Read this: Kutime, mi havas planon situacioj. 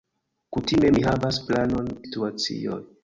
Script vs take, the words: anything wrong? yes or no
no